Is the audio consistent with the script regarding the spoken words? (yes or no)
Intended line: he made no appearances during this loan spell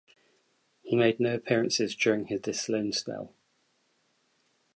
yes